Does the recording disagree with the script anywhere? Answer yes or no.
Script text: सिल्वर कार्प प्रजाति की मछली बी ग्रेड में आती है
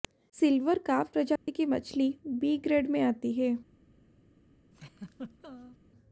no